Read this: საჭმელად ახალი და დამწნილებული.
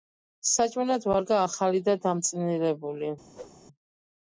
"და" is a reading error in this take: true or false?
false